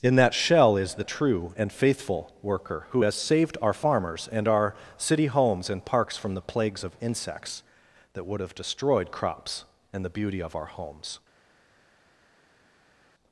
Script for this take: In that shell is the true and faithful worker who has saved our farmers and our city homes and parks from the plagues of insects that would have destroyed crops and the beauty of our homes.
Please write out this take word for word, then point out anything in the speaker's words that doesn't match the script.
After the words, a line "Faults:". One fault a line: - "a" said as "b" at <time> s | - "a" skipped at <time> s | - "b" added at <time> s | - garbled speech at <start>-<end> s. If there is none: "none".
In that shell is the true and faithful worker who has saved our farmers and our city homes and parks from the plagues of insects that would have destroyed crops and the beauty of our homes.
Faults:
none